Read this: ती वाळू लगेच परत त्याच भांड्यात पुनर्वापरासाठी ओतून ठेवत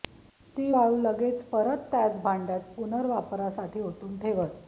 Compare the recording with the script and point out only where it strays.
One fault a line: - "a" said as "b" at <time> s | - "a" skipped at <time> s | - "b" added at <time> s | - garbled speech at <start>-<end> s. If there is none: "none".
none